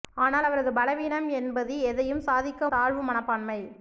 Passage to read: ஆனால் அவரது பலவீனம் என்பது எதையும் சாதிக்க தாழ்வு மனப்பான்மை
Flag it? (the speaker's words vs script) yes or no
no